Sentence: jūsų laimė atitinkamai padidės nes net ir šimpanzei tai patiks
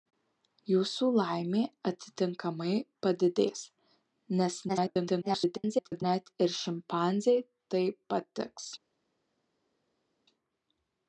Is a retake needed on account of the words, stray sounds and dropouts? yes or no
yes